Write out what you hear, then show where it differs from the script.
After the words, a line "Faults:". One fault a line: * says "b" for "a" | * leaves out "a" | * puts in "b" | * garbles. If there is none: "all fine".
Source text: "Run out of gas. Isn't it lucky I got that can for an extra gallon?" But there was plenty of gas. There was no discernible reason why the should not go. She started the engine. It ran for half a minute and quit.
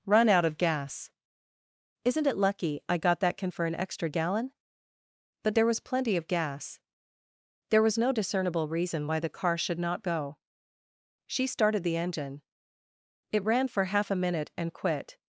"Run out of gas. Isn't it lucky I got that can for an extra gallon?" But there was plenty of gas. There was no discernible reason why the car should not go. She started the engine. It ran for half a minute and quit.
Faults:
* puts in "car"